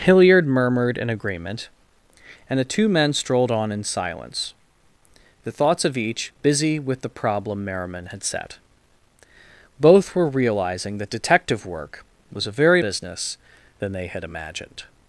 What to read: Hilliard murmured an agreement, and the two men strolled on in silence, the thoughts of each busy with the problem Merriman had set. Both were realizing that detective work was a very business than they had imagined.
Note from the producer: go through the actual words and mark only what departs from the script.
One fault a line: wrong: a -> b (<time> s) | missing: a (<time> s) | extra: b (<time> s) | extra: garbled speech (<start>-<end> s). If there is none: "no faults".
no faults